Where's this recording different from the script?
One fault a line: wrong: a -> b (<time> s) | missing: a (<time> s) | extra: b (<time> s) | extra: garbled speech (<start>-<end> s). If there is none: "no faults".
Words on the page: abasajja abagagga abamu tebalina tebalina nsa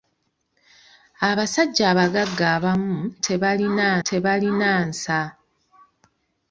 no faults